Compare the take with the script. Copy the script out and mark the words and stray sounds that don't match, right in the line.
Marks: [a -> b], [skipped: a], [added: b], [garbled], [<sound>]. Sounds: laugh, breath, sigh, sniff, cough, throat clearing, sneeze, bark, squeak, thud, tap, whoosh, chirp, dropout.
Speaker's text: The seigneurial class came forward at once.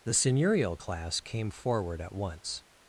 The seigneurial class came forward at once.